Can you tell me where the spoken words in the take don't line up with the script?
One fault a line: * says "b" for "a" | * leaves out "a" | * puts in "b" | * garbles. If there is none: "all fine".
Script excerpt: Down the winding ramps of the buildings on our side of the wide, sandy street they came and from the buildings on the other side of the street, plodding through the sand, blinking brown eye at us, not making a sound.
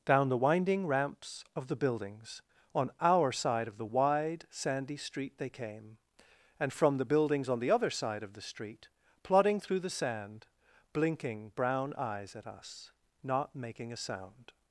* says "eyes" for "eye"